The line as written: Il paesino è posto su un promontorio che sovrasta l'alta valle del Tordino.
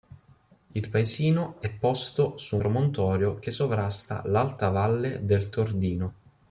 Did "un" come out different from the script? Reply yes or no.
yes